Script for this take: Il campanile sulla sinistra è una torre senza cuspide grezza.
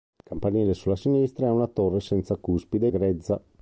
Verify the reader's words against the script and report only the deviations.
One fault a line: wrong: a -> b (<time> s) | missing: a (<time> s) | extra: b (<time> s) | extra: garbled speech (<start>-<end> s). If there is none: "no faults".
no faults